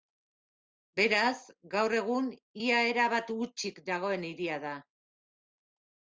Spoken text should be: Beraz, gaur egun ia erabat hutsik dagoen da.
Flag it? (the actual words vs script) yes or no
yes